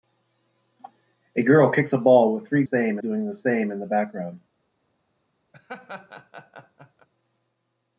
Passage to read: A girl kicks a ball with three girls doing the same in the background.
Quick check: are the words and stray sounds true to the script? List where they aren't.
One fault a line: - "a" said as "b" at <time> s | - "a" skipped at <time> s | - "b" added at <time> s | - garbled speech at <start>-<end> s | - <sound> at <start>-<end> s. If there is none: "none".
- "girls" said as "same" at 2.6 s
- laugh at 5.5-7.1 s